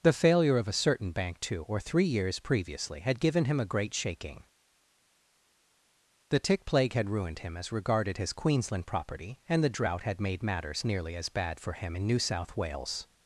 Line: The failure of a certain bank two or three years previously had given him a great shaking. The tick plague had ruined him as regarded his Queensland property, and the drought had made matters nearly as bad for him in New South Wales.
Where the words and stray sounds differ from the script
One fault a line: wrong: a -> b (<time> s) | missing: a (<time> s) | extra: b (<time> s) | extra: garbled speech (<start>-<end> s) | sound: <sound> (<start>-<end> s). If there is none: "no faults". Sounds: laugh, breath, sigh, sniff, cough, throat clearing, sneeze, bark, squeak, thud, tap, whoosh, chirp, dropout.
no faults